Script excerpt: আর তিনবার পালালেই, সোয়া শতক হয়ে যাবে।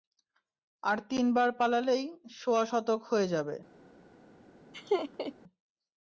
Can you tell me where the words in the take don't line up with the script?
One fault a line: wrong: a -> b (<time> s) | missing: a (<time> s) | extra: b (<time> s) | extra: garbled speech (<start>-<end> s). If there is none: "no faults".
no faults